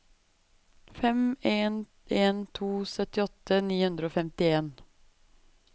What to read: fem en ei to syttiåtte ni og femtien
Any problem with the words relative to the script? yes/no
yes